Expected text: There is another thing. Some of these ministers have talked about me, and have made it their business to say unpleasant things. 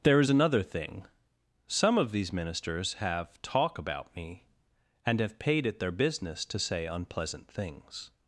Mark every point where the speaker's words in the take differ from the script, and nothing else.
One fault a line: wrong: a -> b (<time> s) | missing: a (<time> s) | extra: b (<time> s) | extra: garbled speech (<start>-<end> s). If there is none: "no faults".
wrong: talked -> talk (3.4 s)
wrong: made -> paid (5.4 s)